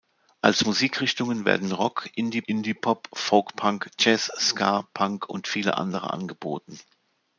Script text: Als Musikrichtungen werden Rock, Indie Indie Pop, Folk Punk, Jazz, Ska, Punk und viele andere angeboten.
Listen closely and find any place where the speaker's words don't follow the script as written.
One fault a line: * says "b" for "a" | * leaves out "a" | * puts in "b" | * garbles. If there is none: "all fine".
all fine